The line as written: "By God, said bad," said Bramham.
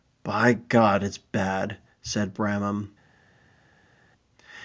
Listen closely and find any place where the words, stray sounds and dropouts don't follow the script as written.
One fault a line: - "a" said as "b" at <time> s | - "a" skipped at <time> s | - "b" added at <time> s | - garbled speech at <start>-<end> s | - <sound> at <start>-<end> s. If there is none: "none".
- "said" said as "it's" at 1.0 s